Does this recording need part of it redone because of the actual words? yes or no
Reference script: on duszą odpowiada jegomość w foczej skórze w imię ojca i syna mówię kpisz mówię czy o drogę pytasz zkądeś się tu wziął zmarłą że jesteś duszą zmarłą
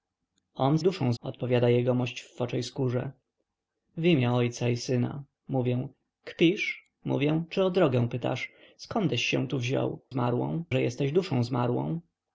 no